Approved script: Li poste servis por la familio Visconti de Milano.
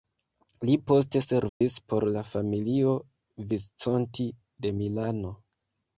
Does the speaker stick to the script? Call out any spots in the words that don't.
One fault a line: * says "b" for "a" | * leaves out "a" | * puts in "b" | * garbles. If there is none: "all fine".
all fine